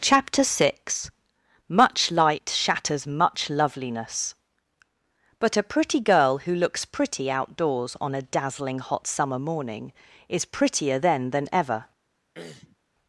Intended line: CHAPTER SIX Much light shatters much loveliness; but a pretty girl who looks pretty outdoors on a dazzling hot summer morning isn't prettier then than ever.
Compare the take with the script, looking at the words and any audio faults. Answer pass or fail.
fail